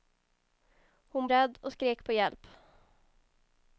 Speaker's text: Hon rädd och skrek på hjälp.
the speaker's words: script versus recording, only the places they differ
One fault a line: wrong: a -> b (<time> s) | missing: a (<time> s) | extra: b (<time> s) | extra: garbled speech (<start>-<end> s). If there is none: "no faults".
no faults